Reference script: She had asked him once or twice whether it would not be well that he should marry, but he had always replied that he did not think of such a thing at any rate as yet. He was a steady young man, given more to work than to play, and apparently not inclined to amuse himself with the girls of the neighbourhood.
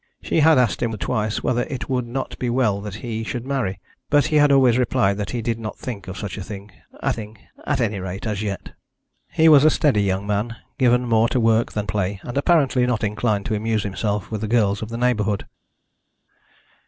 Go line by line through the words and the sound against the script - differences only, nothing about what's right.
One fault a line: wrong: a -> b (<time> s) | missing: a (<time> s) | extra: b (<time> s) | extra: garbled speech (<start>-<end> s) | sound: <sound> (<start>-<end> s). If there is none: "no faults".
missing: once (0.9 s)
extra: thing at (7.1 s)
missing: to (11.9 s)